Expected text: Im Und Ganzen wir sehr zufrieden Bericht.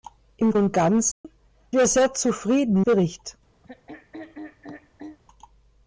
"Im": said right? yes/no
yes